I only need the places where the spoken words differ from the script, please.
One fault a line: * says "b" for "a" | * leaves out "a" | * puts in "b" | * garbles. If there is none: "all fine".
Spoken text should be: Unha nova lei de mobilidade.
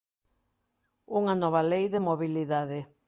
all fine